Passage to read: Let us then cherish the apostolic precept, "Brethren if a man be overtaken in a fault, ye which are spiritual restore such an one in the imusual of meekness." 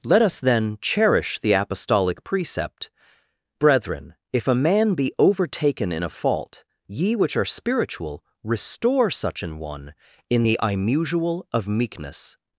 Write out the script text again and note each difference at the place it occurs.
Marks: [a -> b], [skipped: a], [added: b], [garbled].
Let us then cherish the apostolic precept, "Brethren if a man be overtaken in a fault, ye which are spiritual restore such an one in the imusual of meekness."